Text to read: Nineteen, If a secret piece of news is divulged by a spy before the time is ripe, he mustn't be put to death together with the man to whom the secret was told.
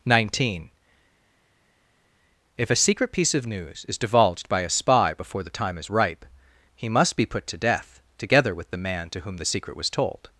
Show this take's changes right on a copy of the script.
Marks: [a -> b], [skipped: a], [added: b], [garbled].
Nineteen, If a secret piece of news is divulged by a spy before the time is ripe, he [mustn't -> must] be put to death together with the man to whom the secret was told.